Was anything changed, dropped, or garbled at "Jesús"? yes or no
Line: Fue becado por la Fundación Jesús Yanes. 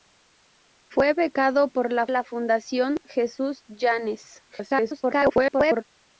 no